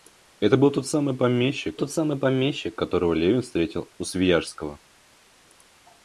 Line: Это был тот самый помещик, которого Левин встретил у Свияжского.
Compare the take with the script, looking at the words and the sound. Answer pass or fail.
fail